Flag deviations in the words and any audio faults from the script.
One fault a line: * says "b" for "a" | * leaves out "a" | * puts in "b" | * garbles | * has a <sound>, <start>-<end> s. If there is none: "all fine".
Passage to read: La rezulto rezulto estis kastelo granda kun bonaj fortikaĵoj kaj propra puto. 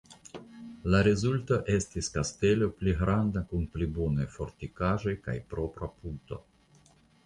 * leaves out "rezulto"
* puts in "pli"
* puts in "pli"